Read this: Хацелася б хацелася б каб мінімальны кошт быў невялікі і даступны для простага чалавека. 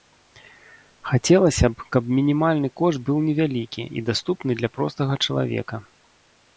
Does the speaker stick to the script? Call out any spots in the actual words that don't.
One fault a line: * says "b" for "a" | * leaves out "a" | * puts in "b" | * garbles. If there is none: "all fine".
* leaves out "хацелася б"